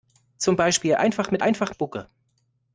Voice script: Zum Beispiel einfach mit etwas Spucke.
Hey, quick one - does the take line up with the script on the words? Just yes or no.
no